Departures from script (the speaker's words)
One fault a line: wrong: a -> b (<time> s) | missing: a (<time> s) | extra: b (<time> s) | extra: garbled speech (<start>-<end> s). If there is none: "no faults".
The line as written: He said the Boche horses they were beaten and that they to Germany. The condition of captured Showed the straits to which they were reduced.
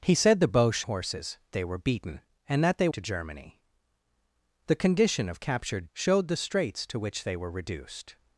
no faults